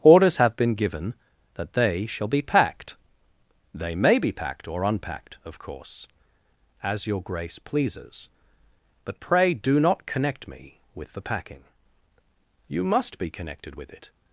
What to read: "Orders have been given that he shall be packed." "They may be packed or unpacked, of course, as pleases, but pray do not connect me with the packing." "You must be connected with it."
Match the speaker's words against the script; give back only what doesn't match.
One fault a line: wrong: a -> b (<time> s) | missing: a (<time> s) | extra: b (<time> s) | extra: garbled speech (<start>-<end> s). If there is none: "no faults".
wrong: he -> they (1.7 s)
extra: your Grace (7.0 s)